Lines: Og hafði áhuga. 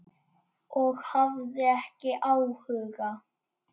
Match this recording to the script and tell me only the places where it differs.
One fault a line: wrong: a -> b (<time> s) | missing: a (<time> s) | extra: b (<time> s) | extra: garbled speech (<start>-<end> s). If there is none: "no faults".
extra: ekki (1.7 s)